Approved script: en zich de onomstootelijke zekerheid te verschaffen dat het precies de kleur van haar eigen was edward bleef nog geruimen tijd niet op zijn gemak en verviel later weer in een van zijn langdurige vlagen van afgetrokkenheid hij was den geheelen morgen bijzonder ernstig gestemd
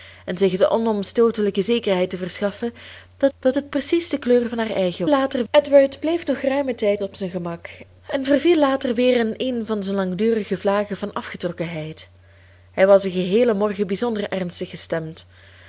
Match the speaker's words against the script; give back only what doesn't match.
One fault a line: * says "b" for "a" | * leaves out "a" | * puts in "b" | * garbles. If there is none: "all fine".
* puts in "dat"
* says "later" for "was"
* leaves out "niet"